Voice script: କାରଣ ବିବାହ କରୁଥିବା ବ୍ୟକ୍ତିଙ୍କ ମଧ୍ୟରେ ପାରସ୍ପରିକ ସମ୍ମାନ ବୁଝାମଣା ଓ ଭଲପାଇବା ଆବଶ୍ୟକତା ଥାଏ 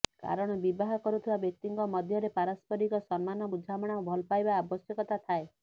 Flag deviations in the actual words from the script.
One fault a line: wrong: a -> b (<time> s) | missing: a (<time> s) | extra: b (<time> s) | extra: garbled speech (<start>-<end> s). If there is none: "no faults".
no faults